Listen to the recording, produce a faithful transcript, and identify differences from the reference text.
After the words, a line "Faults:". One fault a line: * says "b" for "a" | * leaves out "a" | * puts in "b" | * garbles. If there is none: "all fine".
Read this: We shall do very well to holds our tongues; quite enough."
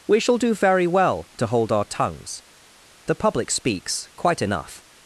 We shall do very well to hold our tongues; the public speaks quite enough."
Faults:
* says "hold" for "holds"
* puts in "the public speaks"